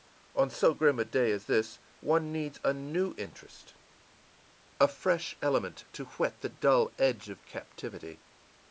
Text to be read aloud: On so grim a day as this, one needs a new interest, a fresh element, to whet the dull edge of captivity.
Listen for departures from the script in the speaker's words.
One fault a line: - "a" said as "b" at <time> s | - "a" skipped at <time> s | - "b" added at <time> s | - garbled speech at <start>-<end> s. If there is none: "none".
none